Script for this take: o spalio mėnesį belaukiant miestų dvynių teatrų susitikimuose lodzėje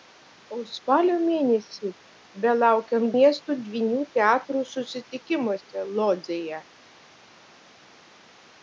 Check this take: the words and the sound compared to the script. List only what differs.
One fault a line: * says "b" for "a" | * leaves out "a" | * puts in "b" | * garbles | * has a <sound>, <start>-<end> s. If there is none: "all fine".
all fine